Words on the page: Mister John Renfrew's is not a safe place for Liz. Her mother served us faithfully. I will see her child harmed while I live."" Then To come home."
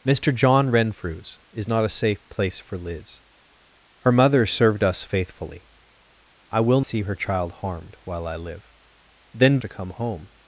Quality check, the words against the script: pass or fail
pass